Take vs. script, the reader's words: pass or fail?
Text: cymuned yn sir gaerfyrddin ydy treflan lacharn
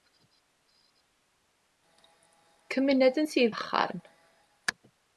fail